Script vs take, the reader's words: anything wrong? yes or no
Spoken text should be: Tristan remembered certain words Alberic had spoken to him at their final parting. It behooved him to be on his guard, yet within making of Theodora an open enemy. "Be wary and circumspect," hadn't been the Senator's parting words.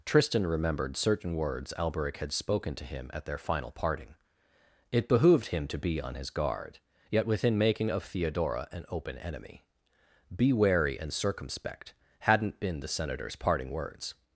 no